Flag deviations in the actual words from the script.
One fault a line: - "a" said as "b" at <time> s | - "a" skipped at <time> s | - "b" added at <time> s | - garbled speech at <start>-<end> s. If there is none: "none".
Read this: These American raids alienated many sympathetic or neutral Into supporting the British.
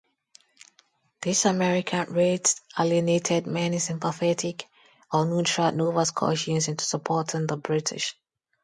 - "Nova Scotians" added at 5.7 s